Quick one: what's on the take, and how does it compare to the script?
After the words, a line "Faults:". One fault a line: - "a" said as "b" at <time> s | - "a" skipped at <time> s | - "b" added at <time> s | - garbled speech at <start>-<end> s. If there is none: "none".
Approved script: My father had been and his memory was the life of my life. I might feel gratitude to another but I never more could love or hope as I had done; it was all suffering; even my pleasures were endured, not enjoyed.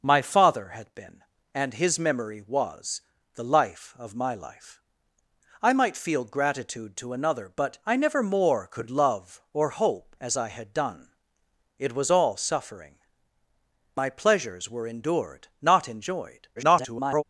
My father had been and his memory was the life of my life. I might feel gratitude to another but I never more could love or hope as I had done; it was all suffering; my pleasures were endured, not enjoyed. [garbled]
Faults:
- "even" skipped at 12.9 s
- garbled speech at 16.6-17.2 s